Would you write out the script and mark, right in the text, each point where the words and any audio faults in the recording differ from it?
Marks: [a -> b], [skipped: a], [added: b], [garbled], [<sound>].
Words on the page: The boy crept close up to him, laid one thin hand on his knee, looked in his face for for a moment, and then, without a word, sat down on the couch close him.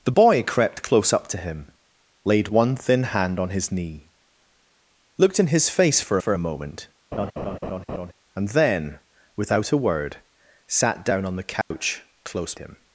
The boy crept close up to him, laid one thin hand on his knee, looked in his face for for a moment, [laugh] and then, without a word, sat down on the couch [dropout] close him.